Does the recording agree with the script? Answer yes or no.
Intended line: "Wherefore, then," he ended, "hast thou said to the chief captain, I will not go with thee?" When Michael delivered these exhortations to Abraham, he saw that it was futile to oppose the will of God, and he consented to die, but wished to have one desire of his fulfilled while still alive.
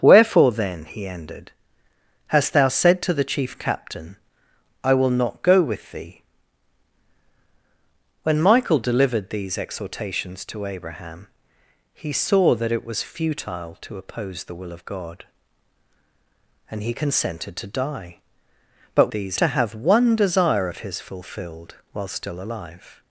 no